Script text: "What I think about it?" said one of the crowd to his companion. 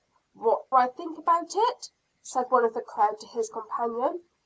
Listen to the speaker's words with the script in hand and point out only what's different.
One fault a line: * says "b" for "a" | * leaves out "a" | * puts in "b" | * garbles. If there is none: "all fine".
all fine